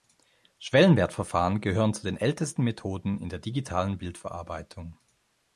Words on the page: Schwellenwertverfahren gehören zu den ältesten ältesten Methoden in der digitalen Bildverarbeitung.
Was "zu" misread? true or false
false